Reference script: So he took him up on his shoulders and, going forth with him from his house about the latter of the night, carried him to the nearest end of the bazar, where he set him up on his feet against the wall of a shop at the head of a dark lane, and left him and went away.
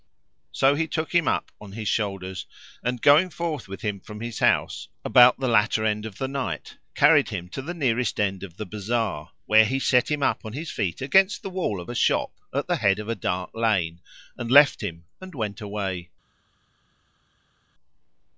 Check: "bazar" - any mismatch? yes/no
no